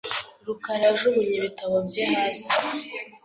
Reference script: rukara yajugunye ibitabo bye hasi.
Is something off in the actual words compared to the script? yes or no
no